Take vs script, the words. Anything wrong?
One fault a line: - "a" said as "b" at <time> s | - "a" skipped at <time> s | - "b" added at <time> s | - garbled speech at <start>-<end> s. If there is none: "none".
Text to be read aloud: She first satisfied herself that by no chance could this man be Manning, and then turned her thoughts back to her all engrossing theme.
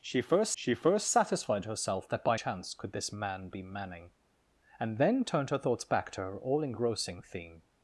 - "she first" added at 0.6 s
- "no" skipped at 2.4 s